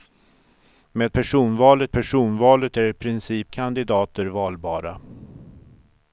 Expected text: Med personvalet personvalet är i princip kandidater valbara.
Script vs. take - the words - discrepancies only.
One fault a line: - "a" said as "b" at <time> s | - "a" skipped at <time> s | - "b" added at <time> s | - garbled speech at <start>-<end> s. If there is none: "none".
none